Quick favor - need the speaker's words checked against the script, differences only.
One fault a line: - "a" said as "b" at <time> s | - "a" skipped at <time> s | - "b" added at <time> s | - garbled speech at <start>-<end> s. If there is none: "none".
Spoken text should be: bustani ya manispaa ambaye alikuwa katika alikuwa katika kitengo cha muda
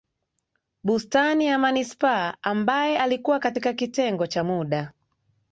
- "alikuwa katika" skipped at 3.7 s